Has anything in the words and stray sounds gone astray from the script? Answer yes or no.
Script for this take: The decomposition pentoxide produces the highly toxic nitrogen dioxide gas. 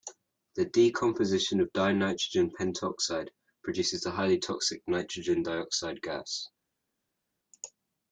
yes